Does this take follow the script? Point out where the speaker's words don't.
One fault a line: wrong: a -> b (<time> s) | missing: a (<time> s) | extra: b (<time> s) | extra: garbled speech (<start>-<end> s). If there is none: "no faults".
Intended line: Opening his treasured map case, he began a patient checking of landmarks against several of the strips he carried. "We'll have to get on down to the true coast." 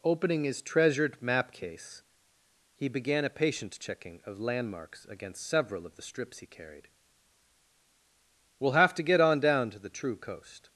no faults